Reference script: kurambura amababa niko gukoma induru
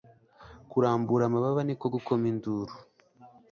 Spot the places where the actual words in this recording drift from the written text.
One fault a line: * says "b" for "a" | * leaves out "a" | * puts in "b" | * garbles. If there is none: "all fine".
all fine